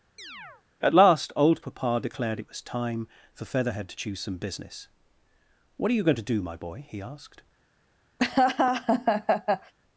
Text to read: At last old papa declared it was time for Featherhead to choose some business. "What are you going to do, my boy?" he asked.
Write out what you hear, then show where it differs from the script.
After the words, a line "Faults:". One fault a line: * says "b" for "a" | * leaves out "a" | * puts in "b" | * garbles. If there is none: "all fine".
At last old papa declared it was time for Featherhead to choose some business. "What are you going to do, my boy?" he asked.
Faults:
all fine